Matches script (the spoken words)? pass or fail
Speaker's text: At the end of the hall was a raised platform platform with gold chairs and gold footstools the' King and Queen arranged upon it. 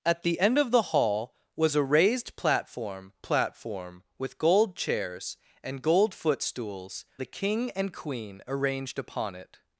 pass